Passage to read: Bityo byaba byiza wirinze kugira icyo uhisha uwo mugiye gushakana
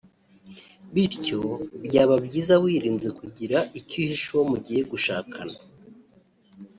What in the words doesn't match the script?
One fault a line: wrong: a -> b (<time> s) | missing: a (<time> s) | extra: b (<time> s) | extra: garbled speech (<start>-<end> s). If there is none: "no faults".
no faults